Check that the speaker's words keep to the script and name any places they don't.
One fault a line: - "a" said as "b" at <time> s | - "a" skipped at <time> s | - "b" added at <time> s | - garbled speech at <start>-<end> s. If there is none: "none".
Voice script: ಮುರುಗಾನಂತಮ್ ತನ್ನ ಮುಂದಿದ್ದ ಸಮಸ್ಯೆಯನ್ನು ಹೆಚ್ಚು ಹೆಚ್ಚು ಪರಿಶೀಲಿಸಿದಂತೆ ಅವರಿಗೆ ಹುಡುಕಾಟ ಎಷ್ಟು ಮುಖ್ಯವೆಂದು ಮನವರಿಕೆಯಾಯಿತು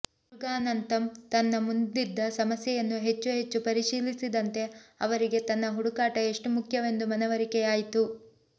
- "ತನ್ನ" added at 5.5 s